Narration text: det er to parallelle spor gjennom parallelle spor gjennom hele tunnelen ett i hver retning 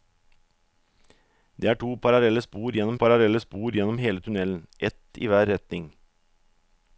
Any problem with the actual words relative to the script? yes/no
no